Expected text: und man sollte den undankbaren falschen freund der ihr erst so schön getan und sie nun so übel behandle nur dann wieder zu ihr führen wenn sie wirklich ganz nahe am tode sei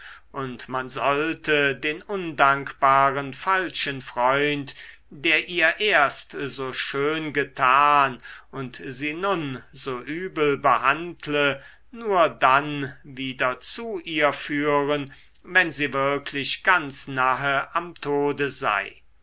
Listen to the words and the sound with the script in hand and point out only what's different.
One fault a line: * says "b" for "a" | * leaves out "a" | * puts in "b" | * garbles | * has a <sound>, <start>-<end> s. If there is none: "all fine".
all fine